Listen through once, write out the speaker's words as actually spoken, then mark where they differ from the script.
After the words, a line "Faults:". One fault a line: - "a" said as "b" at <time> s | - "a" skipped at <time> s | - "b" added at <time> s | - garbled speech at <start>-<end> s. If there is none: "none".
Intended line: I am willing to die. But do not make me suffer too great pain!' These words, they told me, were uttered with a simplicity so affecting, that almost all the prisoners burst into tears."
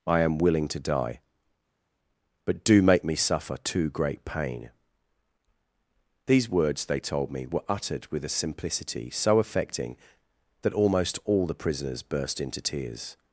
I am willing to die. But do make me suffer too great pain!' These words, they told me, were uttered with a simplicity so affecting, that almost all the prisoners burst into tears."
Faults:
- "not" skipped at 2.8 s